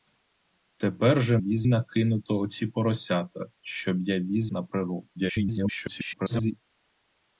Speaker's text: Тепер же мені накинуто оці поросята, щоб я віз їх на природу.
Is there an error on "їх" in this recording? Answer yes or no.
yes